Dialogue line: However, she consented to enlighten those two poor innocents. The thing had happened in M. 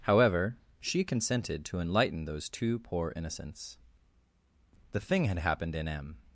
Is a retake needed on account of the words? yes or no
no